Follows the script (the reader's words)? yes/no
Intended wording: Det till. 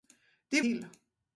yes